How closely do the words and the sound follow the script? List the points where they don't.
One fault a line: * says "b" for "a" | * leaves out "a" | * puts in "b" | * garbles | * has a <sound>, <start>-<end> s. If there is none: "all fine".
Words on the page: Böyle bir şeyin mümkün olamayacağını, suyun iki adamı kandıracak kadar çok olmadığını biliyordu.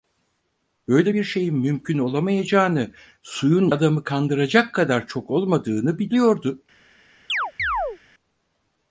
* leaves out "iki"
* has a chirp, 7.3-8.0 s